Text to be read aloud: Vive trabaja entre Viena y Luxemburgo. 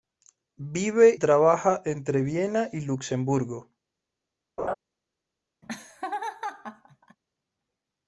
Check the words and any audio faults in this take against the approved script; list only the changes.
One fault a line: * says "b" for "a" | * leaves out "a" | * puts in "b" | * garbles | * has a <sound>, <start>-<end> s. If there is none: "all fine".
* has a laugh, 4.6-4.7 s
* has a laugh, 5.6-7.2 s